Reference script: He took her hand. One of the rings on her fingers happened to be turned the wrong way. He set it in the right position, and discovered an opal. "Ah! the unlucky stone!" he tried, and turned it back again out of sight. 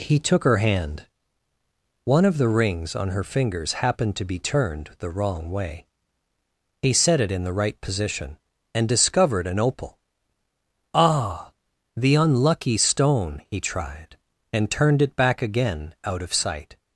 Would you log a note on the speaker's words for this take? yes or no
no